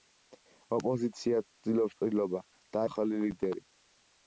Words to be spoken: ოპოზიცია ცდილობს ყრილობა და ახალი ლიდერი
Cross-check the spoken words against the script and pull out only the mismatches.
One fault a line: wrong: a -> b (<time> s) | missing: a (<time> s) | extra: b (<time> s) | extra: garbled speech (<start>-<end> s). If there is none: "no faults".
no faults